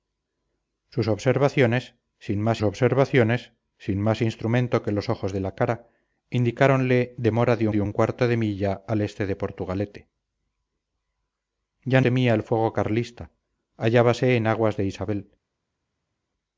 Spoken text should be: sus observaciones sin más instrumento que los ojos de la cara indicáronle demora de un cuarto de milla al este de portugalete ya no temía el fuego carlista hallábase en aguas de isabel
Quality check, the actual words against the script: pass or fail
fail